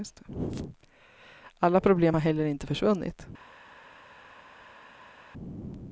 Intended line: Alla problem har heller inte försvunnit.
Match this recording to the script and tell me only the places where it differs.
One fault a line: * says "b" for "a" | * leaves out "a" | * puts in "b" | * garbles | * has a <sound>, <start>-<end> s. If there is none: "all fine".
all fine